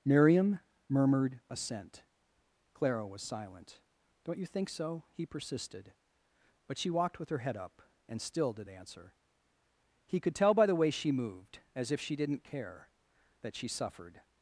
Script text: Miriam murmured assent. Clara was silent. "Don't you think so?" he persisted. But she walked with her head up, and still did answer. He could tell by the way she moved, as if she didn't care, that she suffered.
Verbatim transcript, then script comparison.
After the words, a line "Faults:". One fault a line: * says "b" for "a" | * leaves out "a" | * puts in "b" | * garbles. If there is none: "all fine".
Miriam murmured assent. Clara was silent. "Don't you think so?" he persisted. But she walked with her head up, and still did answer. He could tell by the way she moved, as if she didn't care, that she suffered.
Faults:
all fine